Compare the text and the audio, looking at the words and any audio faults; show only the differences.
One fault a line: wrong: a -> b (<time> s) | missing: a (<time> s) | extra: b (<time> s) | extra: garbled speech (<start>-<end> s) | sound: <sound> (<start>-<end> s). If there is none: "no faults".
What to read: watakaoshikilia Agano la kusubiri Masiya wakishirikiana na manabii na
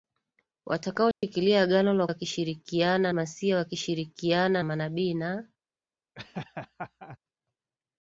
sound: dropout (1.1-1.2 s)
wrong: kusubiri -> wakishirikiana (2.1 s)
missing: na (4.6 s)
sound: laugh (6.2-7.2 s)